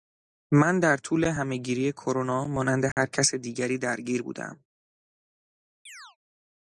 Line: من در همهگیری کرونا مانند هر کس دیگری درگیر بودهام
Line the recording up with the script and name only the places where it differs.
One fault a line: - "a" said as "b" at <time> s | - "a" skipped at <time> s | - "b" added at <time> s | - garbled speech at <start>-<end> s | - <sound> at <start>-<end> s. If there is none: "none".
- "طول" added at 1.0 s
- dropout at 2.9-3.0 s
- chirp at 5.9-6.2 s